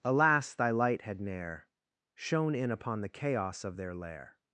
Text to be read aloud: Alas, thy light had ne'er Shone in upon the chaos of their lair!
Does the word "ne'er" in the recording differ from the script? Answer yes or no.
no